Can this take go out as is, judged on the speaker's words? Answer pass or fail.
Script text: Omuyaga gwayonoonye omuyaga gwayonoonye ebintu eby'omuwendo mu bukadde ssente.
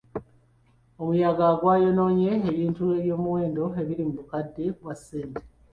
fail